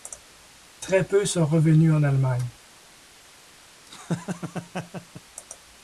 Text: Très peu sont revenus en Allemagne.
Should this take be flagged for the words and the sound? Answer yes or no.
yes